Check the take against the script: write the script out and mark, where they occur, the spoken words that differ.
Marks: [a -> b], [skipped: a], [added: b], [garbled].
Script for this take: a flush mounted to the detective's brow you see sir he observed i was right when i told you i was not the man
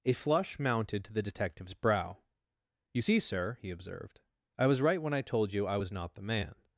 a flush mounted to the detective's brow you see sir he observed i was right when i told you i was not the man